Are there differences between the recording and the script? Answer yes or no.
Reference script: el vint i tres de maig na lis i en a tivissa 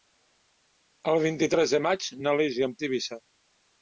no